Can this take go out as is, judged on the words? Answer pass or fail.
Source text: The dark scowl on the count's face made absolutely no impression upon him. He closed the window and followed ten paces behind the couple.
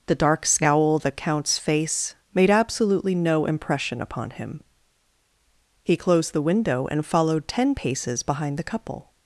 fail